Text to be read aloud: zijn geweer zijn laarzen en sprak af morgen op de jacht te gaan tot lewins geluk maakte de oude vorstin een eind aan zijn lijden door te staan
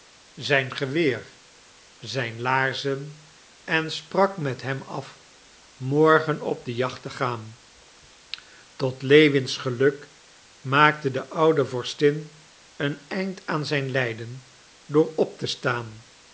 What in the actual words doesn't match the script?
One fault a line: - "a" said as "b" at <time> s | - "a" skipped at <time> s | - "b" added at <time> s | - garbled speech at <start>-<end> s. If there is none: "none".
- "met hem" added at 4.4 s
- "op" added at 15.2 s